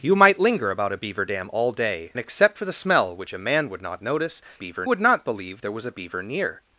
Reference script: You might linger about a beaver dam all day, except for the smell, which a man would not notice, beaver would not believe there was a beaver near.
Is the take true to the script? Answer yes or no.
yes